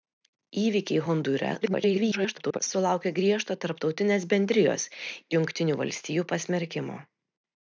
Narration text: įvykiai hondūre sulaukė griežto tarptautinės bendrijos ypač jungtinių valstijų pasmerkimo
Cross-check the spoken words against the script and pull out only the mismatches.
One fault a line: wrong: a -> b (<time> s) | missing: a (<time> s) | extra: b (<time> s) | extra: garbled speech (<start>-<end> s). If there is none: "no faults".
extra: garbled speech (1.6-2.6 s)
missing: ypač (4.9 s)